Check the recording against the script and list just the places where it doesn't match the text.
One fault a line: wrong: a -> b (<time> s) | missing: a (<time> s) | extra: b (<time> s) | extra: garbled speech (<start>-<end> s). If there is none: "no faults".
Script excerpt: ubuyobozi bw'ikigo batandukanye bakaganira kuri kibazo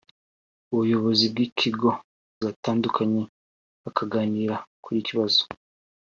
no faults